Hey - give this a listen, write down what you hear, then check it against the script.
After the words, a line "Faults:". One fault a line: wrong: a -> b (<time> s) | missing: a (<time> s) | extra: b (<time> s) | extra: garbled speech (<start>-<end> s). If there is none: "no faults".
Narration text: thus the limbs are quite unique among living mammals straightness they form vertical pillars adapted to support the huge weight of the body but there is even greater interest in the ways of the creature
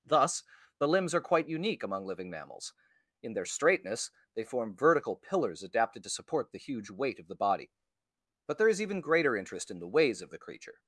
thus the limbs are quite unique among living mammals in their straightness they form vertical pillars adapted to support the huge weight of the body but there is even greater interest in the ways of the creature
Faults:
extra: in their (3.2 s)